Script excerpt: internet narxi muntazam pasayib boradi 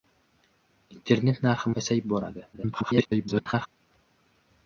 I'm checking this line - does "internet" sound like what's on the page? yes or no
yes